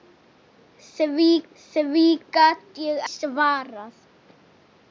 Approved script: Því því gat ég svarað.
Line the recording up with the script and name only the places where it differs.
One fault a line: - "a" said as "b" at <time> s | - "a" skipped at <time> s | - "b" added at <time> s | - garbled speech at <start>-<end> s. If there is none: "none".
none